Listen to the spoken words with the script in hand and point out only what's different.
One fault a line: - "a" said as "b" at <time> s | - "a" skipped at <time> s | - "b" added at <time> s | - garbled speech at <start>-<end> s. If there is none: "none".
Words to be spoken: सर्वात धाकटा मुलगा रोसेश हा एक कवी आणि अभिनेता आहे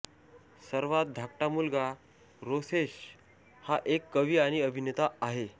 none